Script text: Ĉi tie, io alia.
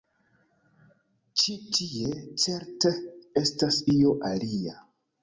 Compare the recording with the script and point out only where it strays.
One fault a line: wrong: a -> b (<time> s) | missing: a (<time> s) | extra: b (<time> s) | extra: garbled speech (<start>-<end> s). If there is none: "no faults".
extra: certe estas (2.5 s)